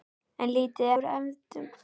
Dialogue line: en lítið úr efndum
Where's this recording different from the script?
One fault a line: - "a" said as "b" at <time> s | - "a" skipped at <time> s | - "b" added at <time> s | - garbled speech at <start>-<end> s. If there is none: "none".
none